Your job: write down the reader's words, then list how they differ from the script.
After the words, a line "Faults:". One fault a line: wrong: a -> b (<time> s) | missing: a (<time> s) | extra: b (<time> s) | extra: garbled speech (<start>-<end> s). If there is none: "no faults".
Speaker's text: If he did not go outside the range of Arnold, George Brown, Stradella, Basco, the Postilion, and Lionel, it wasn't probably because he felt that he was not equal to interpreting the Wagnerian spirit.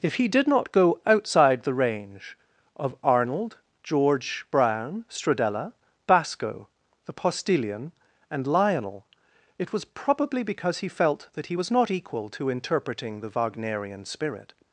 If he did not go outside the range of Arnold, George Brown, Stradella, Basco, the Postilion, and Lionel, it was probably because he felt that he was not equal to interpreting the Wagnerian spirit.
Faults:
wrong: wasn't -> was (9.7 s)